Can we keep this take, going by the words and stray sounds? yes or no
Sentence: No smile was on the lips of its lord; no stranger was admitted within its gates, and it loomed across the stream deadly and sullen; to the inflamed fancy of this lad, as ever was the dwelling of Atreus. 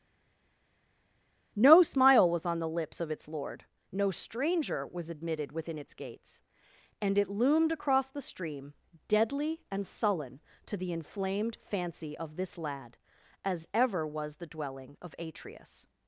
yes